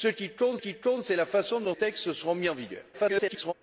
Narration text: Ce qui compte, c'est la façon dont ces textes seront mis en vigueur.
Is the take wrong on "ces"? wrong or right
wrong